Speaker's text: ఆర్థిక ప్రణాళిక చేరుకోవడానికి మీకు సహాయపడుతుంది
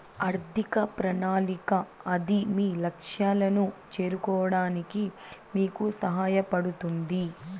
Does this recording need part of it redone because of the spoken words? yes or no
yes